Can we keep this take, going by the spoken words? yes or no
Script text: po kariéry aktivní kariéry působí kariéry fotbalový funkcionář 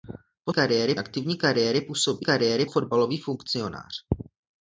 yes